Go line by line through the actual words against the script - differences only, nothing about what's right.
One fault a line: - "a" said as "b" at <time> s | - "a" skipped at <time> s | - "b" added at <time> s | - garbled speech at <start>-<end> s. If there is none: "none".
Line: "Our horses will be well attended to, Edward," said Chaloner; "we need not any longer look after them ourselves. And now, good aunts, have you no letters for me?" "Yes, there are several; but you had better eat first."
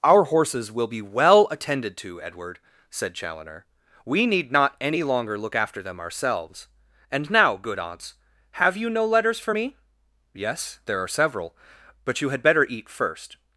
none